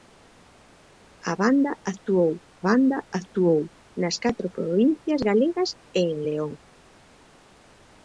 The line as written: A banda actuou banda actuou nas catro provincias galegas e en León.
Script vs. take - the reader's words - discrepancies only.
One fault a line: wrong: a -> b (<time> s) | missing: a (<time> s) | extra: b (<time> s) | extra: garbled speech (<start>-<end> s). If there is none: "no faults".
no faults